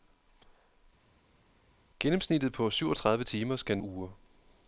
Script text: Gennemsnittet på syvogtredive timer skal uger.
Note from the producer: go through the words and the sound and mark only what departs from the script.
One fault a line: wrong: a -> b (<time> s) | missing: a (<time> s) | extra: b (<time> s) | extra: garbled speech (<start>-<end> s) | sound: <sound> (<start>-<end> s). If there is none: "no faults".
no faults